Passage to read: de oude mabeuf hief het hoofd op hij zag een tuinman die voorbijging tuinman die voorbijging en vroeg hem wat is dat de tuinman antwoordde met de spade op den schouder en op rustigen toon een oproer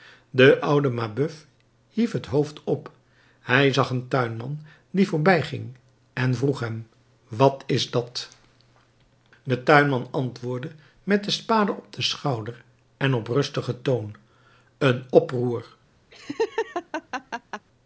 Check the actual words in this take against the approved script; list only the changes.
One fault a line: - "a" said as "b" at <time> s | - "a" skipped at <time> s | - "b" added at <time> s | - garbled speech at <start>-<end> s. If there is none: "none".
- "tuinman die voorbijging" skipped at 5.8 s